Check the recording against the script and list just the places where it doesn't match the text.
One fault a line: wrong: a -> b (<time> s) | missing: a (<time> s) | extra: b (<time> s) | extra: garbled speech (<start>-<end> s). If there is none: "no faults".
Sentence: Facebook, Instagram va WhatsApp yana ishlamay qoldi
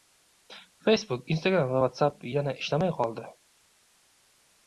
no faults